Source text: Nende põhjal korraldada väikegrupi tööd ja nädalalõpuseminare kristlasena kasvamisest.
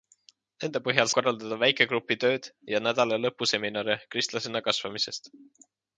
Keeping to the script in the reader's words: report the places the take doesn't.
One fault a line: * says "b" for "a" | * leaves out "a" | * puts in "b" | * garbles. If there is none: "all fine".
all fine